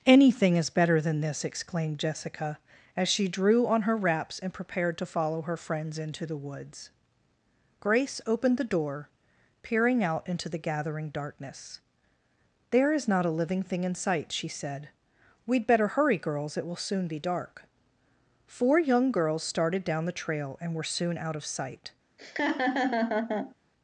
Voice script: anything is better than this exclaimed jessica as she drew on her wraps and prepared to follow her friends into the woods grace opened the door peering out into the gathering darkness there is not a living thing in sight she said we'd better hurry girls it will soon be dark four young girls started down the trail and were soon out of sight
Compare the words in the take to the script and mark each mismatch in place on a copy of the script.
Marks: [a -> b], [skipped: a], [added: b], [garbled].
anything is better than this exclaimed jessica as she drew on her wraps and prepared to follow her friends into the woods grace opened the door peering out into the gathering darkness there is not a living thing in sight she said we'd better hurry girls it will soon be dark four young girls started down the trail and were soon out of sight